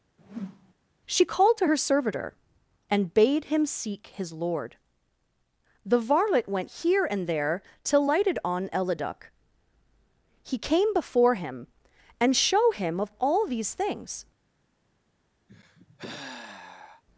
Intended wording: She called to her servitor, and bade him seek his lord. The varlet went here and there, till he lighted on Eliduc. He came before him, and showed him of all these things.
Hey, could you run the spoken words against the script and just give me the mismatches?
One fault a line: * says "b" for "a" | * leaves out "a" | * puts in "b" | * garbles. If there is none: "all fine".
* leaves out "he"
* says "show" for "showed"